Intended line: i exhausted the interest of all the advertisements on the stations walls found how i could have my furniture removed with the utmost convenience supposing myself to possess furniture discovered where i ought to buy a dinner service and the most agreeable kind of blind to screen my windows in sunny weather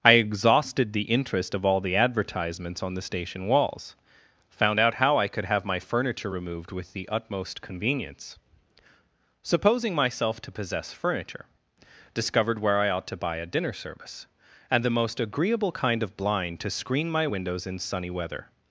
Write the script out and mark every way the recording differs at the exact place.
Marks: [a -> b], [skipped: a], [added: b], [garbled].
i exhausted the interest of all the advertisements on the [stations -> station] walls found [added: out] how i could have my furniture removed with the utmost convenience supposing myself to possess furniture discovered where i ought to buy a dinner service and the most agreeable kind of blind to screen my windows in sunny weather